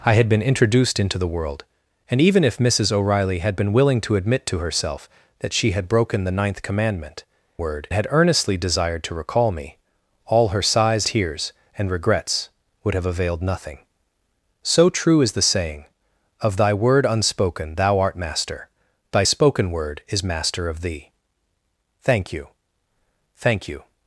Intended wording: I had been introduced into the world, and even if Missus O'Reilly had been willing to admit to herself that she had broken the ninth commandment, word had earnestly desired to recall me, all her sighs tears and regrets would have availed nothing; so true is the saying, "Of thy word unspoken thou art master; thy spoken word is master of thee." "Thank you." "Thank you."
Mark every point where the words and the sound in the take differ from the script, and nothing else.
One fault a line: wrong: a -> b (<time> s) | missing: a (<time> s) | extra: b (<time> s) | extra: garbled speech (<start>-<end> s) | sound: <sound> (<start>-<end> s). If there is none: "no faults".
no faults